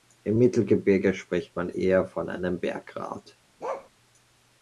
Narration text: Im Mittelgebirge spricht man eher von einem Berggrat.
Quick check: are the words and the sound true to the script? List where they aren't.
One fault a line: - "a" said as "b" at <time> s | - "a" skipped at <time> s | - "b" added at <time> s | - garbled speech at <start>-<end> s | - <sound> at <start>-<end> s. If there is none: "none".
- bark at 3.6-3.9 s